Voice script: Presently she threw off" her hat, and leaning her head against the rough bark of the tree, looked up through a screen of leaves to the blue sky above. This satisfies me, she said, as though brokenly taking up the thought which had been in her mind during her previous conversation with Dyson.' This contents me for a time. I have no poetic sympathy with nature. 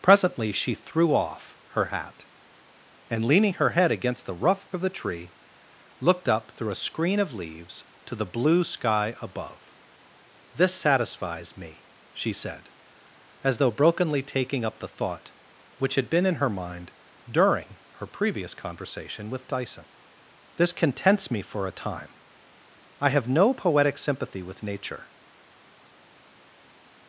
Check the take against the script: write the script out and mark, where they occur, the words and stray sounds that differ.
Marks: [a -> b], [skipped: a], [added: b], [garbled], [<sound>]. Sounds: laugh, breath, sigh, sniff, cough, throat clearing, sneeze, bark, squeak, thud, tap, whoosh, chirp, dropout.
Presently she threw off" her hat, and leaning her head against the rough [skipped: bark] of the tree, looked up through a screen of leaves to the blue sky above. This satisfies me, she said, as though brokenly taking up the thought which had been in her mind during her previous conversation with Dyson.' This contents me for a time. I have no poetic sympathy with nature.